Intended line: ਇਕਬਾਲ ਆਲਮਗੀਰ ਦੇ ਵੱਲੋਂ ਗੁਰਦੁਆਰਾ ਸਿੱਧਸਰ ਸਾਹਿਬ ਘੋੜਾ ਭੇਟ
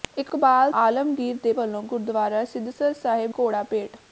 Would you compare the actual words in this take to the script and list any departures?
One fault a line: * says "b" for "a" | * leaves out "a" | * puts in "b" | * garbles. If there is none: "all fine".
all fine